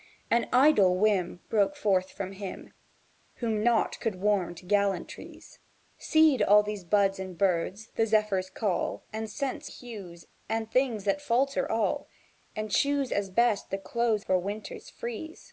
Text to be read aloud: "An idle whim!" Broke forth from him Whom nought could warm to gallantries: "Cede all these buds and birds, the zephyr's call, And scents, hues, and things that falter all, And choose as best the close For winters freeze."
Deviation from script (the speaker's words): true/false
false